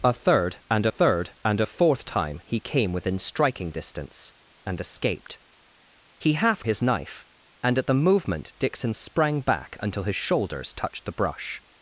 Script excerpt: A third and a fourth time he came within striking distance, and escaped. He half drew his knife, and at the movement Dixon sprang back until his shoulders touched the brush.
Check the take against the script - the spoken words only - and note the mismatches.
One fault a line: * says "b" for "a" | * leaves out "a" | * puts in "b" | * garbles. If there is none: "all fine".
* puts in "third and"
* leaves out "drew"